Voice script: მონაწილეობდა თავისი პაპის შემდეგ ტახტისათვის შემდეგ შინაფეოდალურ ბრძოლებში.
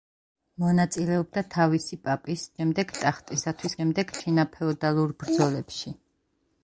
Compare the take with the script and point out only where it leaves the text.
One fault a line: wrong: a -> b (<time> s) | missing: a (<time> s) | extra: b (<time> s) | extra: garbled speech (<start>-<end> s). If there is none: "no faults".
no faults